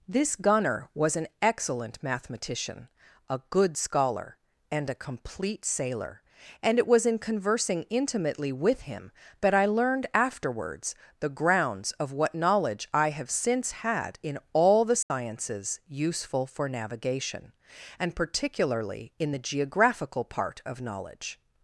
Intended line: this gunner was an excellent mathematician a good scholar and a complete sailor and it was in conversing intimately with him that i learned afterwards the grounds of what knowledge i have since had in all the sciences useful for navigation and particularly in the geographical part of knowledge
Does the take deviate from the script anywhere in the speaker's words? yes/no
no